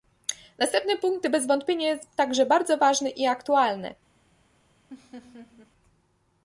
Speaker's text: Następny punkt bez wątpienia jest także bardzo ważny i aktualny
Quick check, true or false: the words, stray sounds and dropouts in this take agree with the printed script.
false